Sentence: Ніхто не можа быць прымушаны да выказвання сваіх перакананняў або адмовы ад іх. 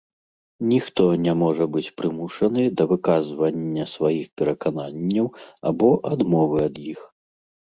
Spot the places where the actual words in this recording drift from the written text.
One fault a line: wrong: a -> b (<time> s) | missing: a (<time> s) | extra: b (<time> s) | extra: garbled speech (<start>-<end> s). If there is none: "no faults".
no faults